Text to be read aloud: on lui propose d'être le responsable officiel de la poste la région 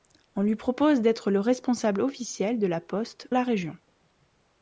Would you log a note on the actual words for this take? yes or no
no